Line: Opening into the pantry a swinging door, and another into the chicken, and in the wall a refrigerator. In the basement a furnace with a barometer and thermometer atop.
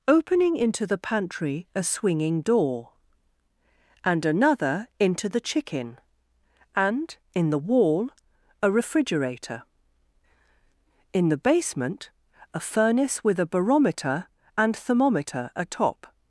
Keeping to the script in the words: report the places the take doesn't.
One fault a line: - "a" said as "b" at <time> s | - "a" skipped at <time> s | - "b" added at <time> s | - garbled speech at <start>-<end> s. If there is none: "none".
none